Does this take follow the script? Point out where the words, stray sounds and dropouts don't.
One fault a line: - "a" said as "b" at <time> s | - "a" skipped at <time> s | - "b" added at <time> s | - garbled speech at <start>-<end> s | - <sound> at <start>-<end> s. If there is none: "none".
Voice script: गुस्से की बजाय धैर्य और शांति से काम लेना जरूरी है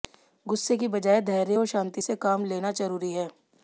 none